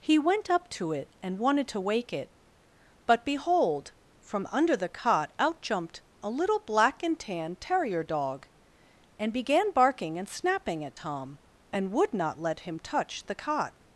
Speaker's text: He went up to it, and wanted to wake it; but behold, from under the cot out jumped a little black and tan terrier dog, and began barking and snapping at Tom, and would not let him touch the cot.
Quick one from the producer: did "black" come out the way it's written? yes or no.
yes